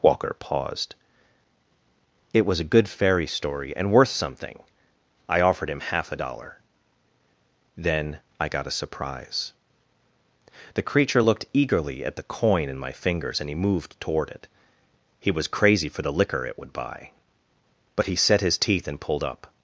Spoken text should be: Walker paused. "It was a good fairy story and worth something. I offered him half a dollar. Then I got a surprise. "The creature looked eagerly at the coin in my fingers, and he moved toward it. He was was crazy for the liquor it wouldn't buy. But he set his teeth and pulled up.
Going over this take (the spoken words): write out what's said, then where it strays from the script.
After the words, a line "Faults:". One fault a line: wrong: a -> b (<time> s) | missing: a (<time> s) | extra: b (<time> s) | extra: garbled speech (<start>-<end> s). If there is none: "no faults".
Walker paused. "It was a good fairy story and worth something. I offered him half a dollar. Then I got a surprise. "The creature looked eagerly at the coin in my fingers, and he moved toward it. He was crazy for the liquor it would buy. But he set his teeth and pulled up.
Faults:
missing: was (15.5 s)
wrong: wouldn't -> would (16.6 s)